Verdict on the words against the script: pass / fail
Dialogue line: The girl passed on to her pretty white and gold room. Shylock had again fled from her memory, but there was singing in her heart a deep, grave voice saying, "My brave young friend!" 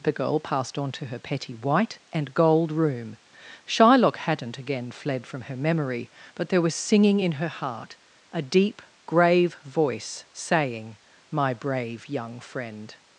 fail